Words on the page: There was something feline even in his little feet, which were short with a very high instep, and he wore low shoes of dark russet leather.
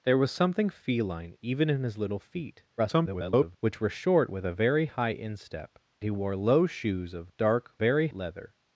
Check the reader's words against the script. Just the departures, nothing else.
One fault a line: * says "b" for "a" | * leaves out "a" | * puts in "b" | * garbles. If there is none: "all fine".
* garbles
* leaves out "and"
* says "very" for "russet"